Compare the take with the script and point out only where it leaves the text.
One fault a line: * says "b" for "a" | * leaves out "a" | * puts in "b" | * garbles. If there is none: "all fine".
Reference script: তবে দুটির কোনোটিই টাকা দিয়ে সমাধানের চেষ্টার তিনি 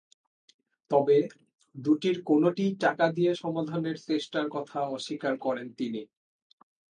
* puts in "কথা অস্বীকার করেন"